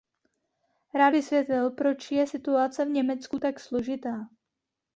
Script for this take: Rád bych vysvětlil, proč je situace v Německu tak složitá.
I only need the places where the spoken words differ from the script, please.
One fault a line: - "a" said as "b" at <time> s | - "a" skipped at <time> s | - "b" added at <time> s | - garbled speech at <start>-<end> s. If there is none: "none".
- "bych" skipped at 1.1 s